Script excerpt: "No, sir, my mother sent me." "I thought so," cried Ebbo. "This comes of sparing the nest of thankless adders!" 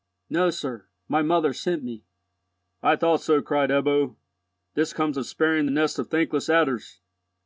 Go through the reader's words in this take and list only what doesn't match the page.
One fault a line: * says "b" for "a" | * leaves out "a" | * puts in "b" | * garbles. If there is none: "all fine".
all fine